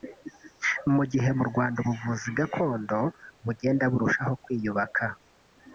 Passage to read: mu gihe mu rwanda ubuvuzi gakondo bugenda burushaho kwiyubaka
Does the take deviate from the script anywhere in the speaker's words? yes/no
no